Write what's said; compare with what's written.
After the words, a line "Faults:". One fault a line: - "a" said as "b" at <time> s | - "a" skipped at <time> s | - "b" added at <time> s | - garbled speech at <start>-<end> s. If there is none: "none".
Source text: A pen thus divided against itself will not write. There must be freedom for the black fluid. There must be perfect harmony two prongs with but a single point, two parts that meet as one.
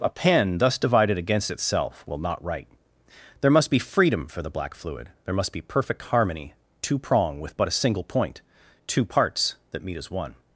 A pen thus divided against itself will not write. There must be freedom for the black fluid. There must be perfect harmony two prong with but a single point, two parts that meet as one.
Faults:
- "prongs" said as "prong" at 7.0 s